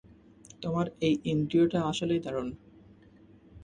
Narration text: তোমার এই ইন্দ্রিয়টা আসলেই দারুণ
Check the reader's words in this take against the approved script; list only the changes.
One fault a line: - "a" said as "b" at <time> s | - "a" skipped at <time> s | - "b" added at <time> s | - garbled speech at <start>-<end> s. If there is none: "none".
none